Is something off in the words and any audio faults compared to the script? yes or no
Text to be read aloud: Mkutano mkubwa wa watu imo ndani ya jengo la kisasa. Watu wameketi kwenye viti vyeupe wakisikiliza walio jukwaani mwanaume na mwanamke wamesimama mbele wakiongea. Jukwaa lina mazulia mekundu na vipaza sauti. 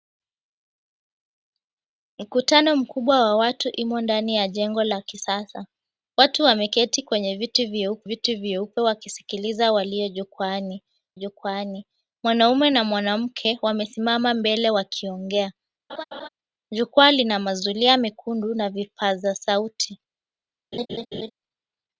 yes